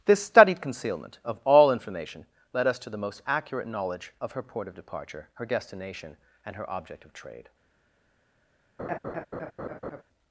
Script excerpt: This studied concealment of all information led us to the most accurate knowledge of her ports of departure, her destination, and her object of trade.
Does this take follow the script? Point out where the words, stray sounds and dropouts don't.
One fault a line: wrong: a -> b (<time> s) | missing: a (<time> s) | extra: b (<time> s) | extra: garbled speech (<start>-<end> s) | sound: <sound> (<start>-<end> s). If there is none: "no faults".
wrong: ports -> port (4.4 s)
sound: laugh (8.8-10.0 s)